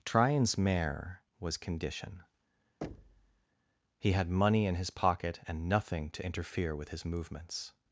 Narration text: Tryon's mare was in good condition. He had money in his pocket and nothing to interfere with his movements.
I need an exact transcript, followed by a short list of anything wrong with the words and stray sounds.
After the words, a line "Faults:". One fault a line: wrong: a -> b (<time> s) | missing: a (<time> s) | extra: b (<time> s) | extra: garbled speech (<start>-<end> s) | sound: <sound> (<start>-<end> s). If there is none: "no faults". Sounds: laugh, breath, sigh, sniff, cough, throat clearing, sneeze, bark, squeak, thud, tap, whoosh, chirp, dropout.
Tryon's mare was condition. He had money in his pocket and nothing to interfere with his movements.
Faults:
missing: in good (1.6 s)
sound: thud (2.8-3.5 s)